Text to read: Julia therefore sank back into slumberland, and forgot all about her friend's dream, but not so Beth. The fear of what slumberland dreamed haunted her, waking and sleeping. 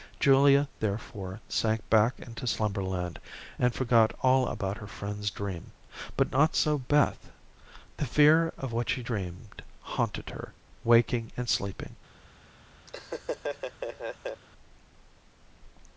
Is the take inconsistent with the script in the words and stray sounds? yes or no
yes